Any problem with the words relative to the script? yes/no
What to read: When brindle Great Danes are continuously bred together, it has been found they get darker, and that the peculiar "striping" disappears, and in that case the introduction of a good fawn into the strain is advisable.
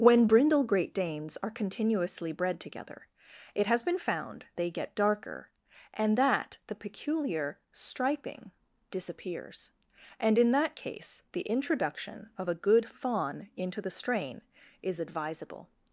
no